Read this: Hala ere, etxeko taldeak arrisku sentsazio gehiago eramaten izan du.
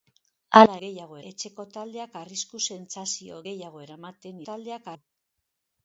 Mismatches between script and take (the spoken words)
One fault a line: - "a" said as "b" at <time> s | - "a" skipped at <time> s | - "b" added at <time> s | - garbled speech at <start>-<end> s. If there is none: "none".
- "ere" said as "gehiago" at 0.9 s
- "izan" said as "taldeak" at 4.5 s